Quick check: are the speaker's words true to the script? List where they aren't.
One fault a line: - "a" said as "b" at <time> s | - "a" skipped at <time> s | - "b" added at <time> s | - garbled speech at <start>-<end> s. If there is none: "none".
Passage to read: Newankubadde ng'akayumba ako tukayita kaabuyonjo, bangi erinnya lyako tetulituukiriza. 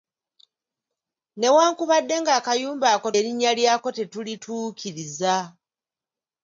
- "tukayita kaabuyonjo bangi" skipped at 3.1 s